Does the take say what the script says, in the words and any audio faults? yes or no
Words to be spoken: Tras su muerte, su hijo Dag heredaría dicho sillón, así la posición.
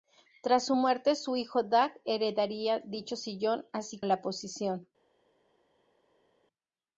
yes